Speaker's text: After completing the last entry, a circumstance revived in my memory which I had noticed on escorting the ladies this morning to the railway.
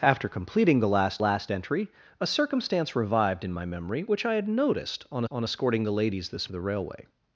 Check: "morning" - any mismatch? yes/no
yes